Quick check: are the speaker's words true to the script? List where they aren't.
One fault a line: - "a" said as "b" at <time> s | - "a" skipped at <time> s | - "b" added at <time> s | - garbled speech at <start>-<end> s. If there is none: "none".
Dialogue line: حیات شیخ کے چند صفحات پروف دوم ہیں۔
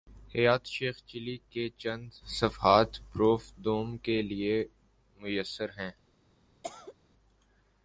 - "چلی" added at 1.1 s
- "کے لیے میسر" added at 4.0 s